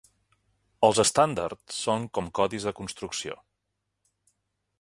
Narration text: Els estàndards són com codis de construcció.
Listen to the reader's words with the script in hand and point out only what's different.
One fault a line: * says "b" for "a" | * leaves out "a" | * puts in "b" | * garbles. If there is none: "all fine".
all fine